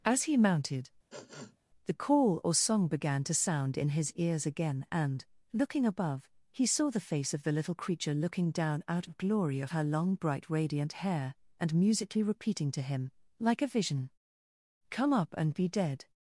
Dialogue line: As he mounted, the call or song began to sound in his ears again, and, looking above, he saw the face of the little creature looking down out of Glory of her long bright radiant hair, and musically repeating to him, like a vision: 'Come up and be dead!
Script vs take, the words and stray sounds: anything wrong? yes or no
yes